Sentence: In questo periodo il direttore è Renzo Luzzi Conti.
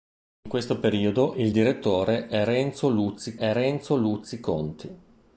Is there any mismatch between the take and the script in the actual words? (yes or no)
yes